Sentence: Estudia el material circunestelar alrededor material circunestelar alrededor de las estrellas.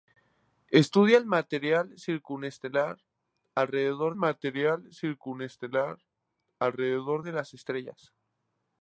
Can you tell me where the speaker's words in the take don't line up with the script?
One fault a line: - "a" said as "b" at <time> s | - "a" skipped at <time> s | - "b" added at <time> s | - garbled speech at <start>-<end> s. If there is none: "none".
none